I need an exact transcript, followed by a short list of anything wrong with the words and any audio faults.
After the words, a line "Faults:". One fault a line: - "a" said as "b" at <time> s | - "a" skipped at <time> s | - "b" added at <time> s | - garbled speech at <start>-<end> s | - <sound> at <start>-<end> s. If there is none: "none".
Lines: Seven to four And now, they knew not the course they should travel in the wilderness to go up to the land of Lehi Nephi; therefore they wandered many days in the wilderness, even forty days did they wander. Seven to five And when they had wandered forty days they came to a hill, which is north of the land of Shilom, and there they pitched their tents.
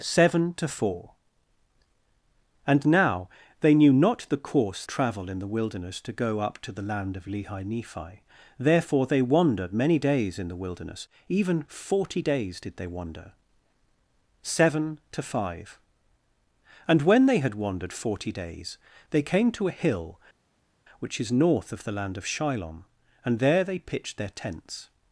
Seven to four And now, they knew not the course travel in the wilderness to go up to the land of Lehi Nephi; therefore they wandered many days in the wilderness, even forty days did they wander. Seven to five And when they had wandered forty days they came to a hill, which is north of the land of Shilom, and there they pitched their tents.
Faults:
- "they should" skipped at 4.8 s